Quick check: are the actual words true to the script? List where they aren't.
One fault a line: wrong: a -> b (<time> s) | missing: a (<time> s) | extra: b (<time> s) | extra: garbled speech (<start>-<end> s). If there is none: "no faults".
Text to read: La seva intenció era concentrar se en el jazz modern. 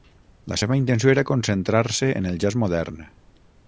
no faults